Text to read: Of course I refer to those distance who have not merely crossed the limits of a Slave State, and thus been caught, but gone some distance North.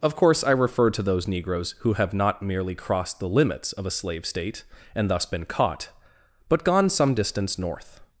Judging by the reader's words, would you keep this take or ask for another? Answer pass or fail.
fail